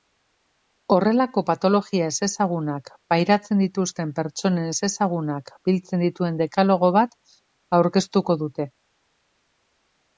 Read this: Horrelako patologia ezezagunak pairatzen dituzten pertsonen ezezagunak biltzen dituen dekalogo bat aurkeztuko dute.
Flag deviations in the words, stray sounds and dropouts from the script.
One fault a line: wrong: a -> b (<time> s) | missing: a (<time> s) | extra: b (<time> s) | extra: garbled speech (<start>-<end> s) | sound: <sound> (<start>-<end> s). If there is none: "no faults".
no faults